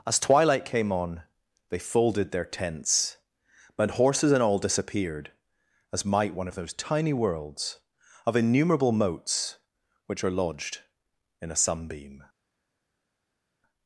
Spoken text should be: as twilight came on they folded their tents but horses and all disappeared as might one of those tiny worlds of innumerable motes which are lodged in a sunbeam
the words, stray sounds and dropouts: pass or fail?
pass